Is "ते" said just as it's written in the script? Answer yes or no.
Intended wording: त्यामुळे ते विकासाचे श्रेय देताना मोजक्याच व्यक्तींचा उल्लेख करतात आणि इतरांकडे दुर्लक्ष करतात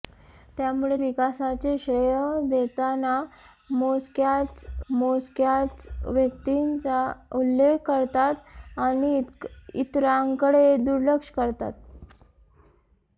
no